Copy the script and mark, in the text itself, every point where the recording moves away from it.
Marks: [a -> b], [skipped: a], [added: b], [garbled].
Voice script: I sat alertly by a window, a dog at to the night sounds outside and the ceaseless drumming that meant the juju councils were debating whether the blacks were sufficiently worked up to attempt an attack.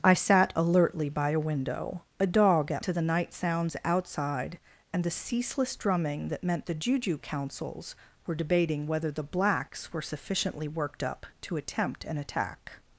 I sat alertly by a window, a dog at to the night sounds outside and the ceaseless drumming that meant the juju councils were debating whether the blacks were sufficiently worked up to attempt an attack.